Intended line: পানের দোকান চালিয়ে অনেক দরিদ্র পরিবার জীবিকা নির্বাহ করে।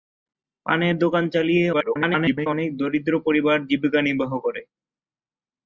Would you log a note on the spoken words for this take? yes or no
yes